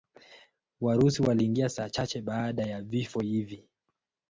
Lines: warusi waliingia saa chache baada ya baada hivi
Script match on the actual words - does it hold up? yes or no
no